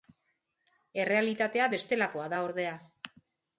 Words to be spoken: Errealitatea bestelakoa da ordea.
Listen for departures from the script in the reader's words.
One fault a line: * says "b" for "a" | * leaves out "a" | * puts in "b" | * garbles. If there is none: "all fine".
all fine